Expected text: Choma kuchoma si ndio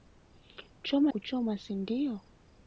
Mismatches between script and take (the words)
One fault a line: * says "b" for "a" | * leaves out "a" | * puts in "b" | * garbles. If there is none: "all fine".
all fine